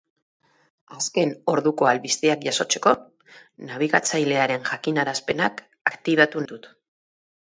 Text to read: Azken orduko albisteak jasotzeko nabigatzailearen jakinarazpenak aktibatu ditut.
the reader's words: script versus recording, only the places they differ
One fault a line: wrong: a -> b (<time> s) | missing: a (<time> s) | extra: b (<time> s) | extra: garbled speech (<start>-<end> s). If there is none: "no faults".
no faults